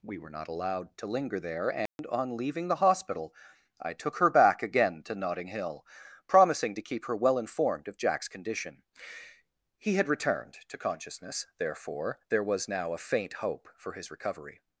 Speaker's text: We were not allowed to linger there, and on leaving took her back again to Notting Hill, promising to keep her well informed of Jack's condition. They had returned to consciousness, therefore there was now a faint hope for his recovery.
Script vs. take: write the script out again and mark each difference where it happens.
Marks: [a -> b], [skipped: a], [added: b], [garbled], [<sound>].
We were not allowed to linger there, and [dropout] on leaving [added: the hospital I] took her back again to Notting Hill, promising to keep her well informed of Jack's condition. [They -> He] had returned to consciousness, therefore there was now a faint hope for his recovery.